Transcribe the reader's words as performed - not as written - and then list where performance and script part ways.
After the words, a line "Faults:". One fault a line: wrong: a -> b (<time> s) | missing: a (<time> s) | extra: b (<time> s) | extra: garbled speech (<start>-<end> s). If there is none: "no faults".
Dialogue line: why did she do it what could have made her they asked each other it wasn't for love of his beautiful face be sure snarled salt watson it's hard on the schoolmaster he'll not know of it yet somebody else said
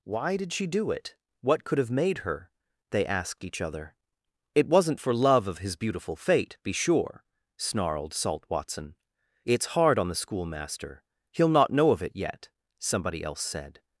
why did she do it what could have made her they asked each other it wasn't for love of his beautiful fate be sure snarled salt watson it's hard on the schoolmaster he'll not know of it yet somebody else said
Faults:
wrong: face -> fate (6.2 s)